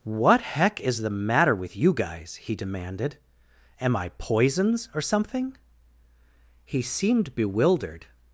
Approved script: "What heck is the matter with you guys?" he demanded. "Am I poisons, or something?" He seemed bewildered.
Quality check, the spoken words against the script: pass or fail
pass